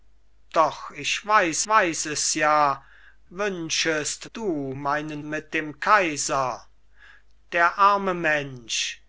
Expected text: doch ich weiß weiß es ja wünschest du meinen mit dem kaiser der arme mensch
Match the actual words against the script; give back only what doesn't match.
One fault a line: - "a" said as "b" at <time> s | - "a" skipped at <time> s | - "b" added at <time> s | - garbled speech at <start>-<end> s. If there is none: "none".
none